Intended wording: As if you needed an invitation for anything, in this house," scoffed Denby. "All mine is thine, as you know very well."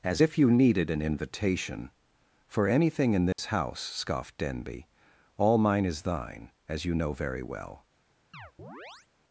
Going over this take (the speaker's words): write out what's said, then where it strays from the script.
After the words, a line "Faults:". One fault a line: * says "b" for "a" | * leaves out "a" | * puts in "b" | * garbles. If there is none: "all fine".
As if you needed an invitation for anything, in this house," scoffed Denby. "All mine is thine, as you know very well."
Faults:
all fine